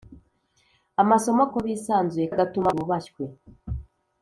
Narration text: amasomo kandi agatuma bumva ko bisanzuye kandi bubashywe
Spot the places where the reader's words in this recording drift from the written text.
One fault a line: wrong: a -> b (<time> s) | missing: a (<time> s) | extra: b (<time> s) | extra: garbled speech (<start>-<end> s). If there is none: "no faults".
missing: kandi agatuma bumva (1.4 s)
wrong: kandi -> agatuma (2.3 s)